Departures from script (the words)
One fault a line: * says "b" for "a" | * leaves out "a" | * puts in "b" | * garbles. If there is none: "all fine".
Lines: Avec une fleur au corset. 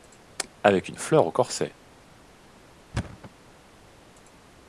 all fine